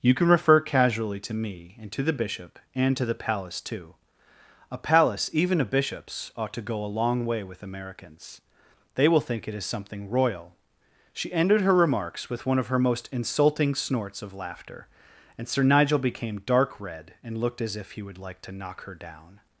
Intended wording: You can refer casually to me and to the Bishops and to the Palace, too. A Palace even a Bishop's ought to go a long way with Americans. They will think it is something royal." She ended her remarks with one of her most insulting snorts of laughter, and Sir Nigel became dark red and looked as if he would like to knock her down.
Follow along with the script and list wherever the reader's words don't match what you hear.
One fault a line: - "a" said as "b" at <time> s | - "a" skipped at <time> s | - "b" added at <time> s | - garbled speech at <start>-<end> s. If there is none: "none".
- "Bishops" said as "Bishop" at 2.1 s